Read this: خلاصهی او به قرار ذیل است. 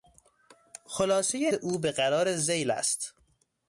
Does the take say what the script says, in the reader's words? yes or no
yes